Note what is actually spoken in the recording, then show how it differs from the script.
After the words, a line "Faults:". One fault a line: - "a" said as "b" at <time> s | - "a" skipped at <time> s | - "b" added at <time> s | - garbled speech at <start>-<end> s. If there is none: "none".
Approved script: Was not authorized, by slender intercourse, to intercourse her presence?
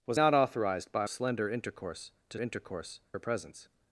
Was not authorized, by slender intercourse, to intercourse her presence?
Faults:
none